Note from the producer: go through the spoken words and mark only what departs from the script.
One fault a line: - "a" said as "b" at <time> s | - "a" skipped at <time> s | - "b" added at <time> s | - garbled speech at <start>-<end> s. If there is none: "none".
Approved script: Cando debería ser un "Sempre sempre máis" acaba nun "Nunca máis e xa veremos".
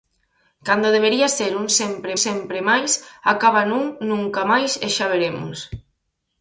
none